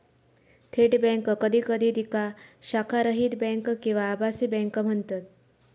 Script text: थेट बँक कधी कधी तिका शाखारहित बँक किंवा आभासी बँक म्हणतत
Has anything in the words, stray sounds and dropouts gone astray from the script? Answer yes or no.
no